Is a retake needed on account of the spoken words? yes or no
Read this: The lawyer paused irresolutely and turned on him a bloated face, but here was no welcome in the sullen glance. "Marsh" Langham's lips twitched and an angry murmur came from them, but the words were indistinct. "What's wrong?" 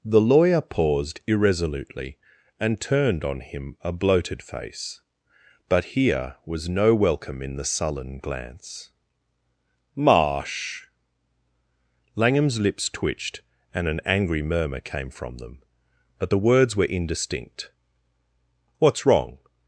no